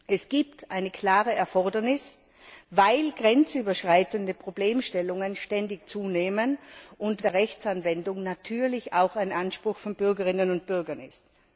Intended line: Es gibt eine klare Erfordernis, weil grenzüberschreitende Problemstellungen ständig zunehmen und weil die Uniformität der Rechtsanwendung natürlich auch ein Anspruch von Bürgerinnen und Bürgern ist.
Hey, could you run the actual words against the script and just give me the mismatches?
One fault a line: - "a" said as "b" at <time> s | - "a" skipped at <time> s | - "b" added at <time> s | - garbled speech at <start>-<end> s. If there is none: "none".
- "weil die Uniformität" skipped at 7.3 s